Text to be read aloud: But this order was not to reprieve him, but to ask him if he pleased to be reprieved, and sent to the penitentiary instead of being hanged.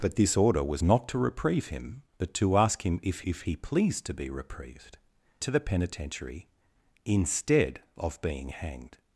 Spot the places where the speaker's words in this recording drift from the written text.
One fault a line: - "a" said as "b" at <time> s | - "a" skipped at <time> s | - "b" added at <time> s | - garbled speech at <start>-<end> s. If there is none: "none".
- "if" added at 3.2 s
- "and sent" skipped at 5.0 s